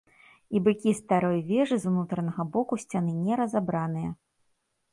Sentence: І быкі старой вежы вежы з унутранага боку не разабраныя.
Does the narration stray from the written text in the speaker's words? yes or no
yes